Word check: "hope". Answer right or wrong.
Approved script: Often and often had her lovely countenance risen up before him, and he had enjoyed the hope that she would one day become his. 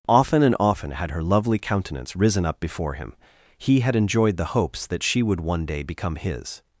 wrong